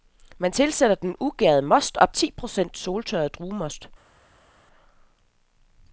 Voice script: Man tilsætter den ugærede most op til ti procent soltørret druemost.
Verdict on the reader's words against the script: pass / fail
fail